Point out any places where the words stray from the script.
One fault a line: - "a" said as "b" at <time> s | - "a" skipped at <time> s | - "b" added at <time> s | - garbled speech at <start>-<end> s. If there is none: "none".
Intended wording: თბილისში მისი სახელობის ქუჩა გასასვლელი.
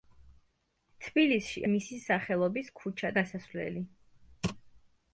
none